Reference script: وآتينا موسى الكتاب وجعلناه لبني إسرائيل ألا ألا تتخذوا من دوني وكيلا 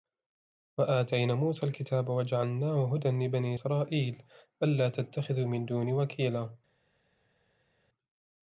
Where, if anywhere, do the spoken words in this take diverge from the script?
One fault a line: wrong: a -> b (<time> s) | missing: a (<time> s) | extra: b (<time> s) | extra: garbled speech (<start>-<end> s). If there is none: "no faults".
extra: هدى (3.0 s)
missing: ألا (4.9 s)